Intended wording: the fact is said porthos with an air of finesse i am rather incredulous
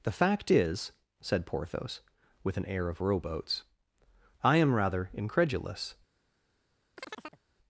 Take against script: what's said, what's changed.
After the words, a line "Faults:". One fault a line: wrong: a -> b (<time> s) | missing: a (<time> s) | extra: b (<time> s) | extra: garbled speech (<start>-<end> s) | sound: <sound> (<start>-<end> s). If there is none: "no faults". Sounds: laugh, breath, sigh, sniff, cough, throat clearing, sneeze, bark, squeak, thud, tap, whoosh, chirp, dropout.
the fact is said porthos with an air of rowboats i am rather incredulous
Faults:
wrong: finesse -> rowboats (3.0 s)
sound: chirp (7.0-7.4 s)